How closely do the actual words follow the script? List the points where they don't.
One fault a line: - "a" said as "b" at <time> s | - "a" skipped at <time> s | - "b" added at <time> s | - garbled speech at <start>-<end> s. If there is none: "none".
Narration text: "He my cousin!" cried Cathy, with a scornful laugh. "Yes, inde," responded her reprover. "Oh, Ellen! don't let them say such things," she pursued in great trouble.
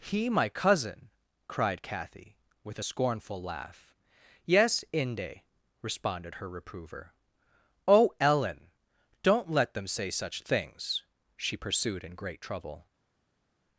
none